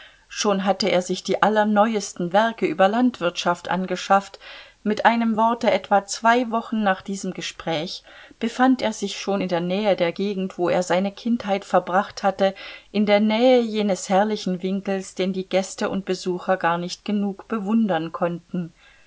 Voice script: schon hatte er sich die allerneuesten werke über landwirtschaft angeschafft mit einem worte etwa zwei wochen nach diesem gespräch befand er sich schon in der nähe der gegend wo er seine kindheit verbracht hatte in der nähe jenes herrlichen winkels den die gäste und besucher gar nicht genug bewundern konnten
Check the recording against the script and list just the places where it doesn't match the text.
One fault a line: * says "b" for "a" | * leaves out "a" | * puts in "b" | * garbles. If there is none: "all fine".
all fine